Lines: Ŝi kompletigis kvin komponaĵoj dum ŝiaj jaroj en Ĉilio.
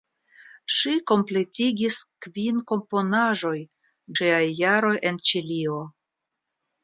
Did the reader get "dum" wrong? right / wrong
wrong